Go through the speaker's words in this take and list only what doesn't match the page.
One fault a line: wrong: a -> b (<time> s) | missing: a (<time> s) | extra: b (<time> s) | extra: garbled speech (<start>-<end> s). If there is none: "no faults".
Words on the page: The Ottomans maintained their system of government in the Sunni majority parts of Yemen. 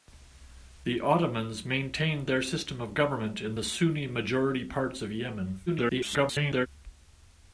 extra: garbled speech (5.7-6.7 s)